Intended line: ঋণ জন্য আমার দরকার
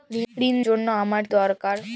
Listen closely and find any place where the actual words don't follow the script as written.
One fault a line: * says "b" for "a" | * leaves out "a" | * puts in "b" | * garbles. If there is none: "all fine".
all fine